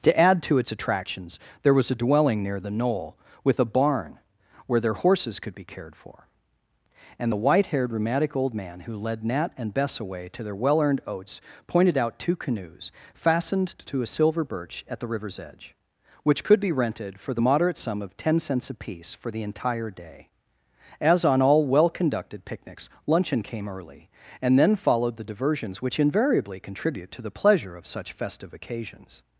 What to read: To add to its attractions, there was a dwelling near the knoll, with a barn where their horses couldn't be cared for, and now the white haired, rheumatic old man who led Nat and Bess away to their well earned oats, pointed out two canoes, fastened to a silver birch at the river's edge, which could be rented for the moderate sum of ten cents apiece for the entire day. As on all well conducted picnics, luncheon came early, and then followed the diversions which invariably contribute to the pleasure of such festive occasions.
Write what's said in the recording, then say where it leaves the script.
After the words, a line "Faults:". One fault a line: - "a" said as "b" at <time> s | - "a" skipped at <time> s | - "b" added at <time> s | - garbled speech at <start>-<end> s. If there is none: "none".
To add to its attractions, there was a dwelling near the knoll, with a barn where their horses could be cared for, and the white haired, rheumatic old man who led Nat and Bess away to their well earned oats, pointed out two canoes, fastened to a silver birch at the river's edge, which could be rented for the moderate sum of ten cents apiece for the entire day. As on all well conducted picnics, luncheon came early, and then followed the diversions which invariably contribute to the pleasure of such festive occasions.
Faults:
- "couldn't" said as "could" at 5.4 s
- "now" skipped at 7.3 s